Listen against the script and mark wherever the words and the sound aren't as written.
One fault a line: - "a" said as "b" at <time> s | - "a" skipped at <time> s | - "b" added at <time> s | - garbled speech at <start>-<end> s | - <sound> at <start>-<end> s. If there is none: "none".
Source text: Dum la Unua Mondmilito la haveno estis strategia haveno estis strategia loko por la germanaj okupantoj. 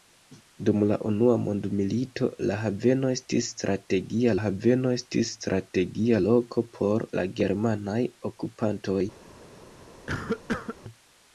- cough at 10.1-10.8 s